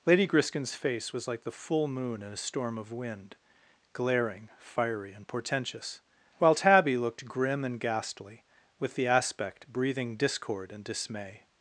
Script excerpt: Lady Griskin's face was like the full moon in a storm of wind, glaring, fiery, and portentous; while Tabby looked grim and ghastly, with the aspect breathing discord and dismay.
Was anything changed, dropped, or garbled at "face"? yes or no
no